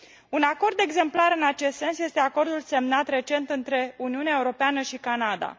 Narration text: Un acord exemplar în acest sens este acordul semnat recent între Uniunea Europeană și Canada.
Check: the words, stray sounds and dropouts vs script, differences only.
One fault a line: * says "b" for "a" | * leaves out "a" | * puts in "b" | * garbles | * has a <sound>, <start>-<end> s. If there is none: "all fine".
all fine